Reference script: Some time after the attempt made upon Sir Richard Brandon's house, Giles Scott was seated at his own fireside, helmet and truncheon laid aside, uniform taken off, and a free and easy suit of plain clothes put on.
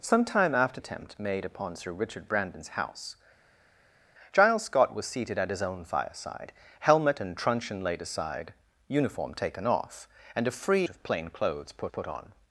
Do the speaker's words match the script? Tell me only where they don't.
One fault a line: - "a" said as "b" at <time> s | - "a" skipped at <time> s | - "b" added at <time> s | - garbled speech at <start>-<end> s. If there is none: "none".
- "the" skipped at 0.8 s
- "and easy suit" skipped at 10.9 s
- "put" added at 11.9 s